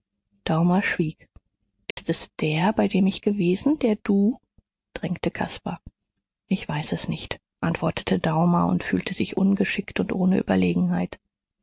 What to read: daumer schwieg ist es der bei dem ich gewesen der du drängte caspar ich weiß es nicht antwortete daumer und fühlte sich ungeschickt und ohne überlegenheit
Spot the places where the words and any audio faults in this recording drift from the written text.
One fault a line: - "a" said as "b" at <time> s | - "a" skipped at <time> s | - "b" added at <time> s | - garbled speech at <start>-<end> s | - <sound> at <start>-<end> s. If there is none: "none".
- dropout at 1.9-2.0 s